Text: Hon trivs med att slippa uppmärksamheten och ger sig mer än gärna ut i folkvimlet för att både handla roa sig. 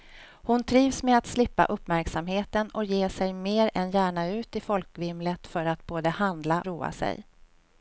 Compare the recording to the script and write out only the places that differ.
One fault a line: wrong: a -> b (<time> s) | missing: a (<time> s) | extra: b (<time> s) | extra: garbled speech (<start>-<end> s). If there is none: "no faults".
no faults